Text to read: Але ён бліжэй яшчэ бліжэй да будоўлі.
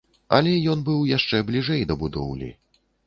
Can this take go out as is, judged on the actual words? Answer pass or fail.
fail